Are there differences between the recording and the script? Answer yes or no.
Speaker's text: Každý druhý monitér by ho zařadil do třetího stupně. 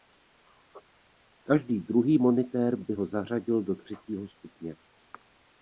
no